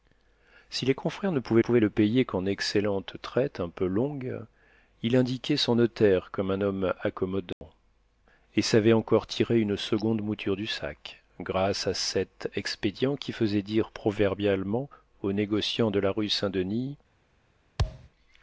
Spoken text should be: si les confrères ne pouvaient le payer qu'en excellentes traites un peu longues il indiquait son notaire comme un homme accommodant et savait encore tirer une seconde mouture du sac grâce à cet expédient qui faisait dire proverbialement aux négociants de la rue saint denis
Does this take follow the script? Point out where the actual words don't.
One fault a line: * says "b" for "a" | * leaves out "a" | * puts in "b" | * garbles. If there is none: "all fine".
* puts in "pouvaient"